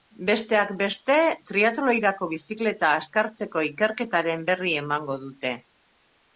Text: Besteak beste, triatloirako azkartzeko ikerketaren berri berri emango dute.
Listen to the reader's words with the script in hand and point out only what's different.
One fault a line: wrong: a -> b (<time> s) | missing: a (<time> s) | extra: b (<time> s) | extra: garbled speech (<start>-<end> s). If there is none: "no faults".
extra: bizikleta (2.4 s)
missing: berri (4.8 s)